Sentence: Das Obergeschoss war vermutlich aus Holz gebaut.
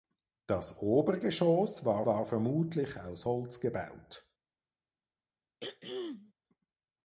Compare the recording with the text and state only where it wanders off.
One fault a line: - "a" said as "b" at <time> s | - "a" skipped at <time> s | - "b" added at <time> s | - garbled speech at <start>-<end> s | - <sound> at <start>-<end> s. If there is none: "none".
- "war" added at 2.1 s
- throat clearing at 5.6-6.3 s